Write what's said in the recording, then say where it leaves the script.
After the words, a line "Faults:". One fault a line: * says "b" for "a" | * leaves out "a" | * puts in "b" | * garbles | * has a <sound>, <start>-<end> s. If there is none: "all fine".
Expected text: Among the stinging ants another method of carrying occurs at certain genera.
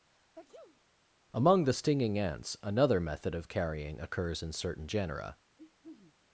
Among the stinging ants another method of carrying occurs in certain genera.
Faults:
* has a sneeze, 0.1-0.8 s
* says "in" for "at"
* has a throat clearing, 5.6-6.2 s